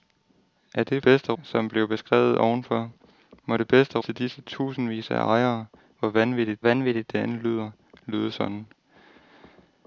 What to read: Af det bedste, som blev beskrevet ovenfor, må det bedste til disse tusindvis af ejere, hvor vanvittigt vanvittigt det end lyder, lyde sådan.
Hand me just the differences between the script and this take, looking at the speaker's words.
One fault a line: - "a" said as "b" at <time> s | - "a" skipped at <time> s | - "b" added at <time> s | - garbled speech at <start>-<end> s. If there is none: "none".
none